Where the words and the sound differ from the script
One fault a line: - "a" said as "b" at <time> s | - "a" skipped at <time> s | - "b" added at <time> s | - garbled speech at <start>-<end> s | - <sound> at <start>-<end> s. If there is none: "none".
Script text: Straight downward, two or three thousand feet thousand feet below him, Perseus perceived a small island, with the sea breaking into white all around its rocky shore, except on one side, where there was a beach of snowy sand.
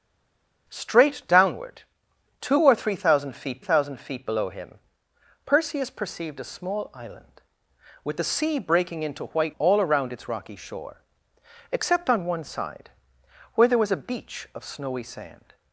none